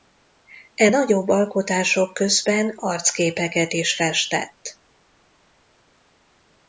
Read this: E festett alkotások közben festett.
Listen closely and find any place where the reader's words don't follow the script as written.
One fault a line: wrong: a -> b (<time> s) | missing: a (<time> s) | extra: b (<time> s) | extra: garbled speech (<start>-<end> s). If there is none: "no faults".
wrong: festett -> nagyobb (0.9 s)
extra: arcképeket is (2.8 s)